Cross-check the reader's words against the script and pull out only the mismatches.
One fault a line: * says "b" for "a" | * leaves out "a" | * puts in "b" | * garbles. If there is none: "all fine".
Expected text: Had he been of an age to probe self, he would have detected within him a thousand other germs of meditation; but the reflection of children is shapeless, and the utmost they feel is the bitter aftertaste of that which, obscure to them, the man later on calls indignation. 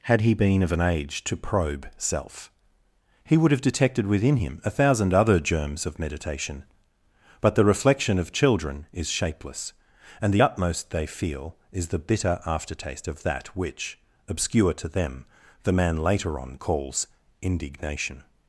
all fine